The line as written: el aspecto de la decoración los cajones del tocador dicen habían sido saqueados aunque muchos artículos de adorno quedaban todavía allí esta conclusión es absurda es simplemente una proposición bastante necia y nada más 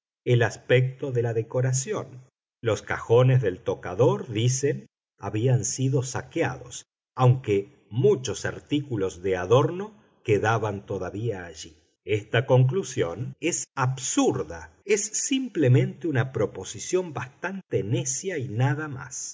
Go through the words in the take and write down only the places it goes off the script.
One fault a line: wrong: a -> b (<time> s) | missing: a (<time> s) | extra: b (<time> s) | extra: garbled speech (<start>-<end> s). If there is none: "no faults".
no faults